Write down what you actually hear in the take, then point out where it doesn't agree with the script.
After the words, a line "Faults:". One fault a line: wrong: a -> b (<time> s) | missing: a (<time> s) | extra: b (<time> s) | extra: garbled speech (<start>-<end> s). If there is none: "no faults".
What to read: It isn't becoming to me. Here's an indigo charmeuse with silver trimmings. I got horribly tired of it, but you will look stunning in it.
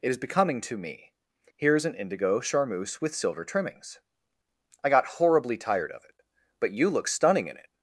It is becoming to me. Here's an indigo charmeuse with silver trimmings. I got horribly tired of it, but you look stunning in it.
Faults:
wrong: isn't -> is (0.1 s)
missing: will (6.9 s)